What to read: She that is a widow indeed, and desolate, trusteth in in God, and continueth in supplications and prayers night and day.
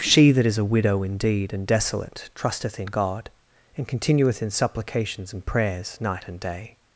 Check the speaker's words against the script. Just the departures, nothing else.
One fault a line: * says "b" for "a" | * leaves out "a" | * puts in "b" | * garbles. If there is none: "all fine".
* leaves out "in"